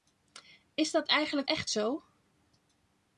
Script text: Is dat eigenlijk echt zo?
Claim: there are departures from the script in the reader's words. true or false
false